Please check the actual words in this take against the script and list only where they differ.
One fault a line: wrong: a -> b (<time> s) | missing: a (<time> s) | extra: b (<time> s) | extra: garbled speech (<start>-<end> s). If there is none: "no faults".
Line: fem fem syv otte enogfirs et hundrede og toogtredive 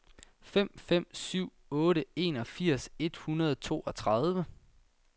no faults